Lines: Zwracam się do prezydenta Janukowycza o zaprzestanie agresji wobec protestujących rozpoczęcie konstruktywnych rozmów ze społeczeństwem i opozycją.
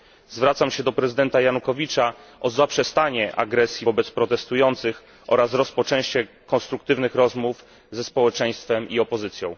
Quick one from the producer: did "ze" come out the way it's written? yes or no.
yes